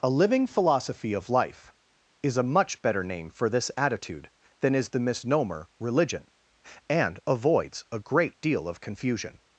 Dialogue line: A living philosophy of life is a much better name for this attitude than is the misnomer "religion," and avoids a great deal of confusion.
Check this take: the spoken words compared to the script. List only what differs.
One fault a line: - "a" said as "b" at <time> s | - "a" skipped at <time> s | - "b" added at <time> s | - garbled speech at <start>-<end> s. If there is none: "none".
none